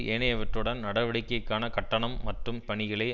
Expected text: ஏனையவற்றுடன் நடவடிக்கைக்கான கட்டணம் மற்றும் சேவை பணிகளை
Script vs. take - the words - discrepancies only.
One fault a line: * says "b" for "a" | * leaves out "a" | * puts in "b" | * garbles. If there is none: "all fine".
* leaves out "சேவை"